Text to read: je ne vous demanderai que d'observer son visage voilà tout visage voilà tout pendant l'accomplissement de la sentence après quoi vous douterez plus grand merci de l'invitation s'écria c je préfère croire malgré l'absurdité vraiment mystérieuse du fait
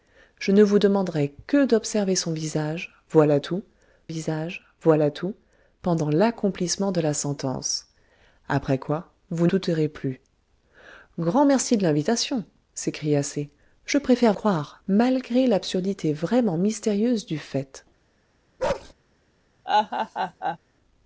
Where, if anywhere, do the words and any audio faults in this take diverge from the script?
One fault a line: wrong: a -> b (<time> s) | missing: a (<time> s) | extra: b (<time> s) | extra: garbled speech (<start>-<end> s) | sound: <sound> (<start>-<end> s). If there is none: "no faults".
sound: bark (18.6-18.9 s)
sound: laugh (19.6-20.6 s)